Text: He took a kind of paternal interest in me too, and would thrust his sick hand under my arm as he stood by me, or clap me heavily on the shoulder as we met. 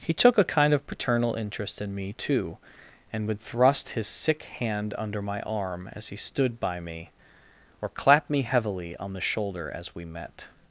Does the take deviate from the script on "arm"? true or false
false